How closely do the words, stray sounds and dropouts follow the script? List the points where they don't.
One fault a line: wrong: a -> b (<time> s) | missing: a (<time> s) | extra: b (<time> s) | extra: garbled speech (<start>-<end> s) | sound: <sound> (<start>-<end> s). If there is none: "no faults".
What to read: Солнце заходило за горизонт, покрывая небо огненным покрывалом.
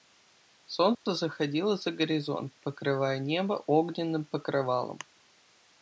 sound: dropout (0.9-1.1 s)